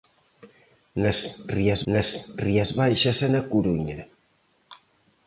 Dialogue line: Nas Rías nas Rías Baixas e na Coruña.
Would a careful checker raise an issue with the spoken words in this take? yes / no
no